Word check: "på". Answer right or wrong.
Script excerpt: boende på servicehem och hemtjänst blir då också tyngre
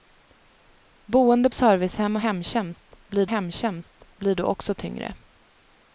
wrong